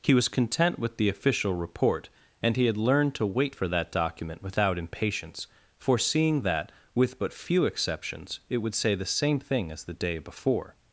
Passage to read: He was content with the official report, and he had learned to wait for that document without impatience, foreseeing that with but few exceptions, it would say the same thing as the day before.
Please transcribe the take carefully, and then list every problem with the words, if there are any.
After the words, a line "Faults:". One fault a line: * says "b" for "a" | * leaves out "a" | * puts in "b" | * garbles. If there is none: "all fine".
He was content with the official report, and he had learned to wait for that document without impatience, foreseeing that with but few exceptions, it would say the same thing as the day before.
Faults:
all fine